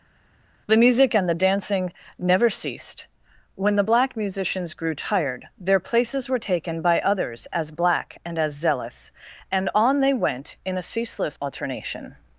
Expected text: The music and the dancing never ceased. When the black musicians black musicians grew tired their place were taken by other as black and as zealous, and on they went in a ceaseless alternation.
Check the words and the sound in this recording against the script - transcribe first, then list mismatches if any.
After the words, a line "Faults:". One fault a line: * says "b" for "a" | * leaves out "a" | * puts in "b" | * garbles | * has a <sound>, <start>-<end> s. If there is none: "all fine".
The music and the dancing never ceased. When the black musicians grew tired their places were taken by others as black and as zealous, and on they went in a ceaseless alternation.
Faults:
* leaves out "black musicians"
* says "places" for "place"
* says "others" for "other"